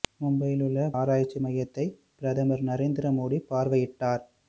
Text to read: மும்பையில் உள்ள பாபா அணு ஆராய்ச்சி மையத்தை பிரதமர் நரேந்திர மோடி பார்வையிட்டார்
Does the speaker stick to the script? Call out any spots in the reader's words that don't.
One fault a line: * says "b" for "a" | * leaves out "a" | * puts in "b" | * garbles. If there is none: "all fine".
* leaves out "பாபா அணு"